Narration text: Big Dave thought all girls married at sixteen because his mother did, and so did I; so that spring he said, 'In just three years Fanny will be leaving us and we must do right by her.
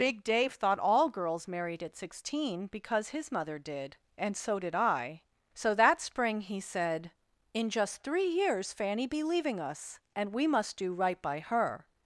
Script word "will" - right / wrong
wrong